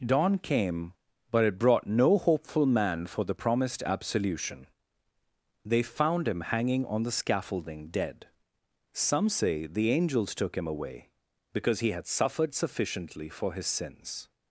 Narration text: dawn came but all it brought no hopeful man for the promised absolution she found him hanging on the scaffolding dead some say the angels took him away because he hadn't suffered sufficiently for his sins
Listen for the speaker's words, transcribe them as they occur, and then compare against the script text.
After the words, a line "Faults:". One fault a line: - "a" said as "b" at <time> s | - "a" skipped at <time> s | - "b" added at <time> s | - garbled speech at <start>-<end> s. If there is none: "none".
dawn came but it brought no hopeful man for the promised absolution they found him hanging on the scaffolding dead some say the angels took him away because he had suffered sufficiently for his sins
Faults:
- "all" skipped at 1.4 s
- "she" said as "they" at 5.6 s
- "hadn't" said as "had" at 11.9 s